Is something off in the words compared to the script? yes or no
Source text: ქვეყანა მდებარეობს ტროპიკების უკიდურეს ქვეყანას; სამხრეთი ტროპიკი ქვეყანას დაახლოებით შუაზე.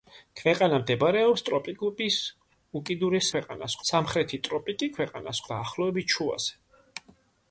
no